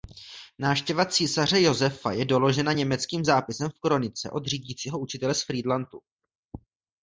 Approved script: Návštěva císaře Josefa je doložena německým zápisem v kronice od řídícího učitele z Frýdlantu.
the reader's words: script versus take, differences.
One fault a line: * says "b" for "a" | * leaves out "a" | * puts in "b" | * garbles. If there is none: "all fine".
all fine